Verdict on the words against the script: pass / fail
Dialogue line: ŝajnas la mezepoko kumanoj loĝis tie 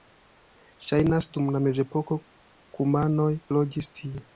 fail